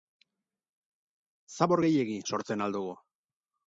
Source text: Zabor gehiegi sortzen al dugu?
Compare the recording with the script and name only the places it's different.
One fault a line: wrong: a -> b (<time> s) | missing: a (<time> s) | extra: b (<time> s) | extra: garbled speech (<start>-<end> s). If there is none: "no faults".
no faults